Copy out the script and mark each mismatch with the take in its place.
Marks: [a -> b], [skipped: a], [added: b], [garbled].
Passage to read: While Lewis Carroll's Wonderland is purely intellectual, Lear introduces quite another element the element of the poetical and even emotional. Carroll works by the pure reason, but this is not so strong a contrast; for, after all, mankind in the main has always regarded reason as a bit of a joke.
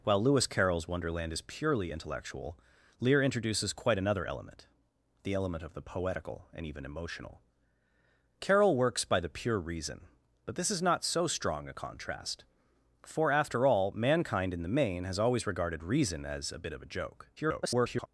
While Lewis Carroll's Wonderland is purely intellectual, Lear introduces quite another element the element of the poetical and even emotional. Carroll works by the pure reason, but this is not so strong a contrast; for, after all, mankind in the main has always regarded reason as a bit of a joke. [garbled]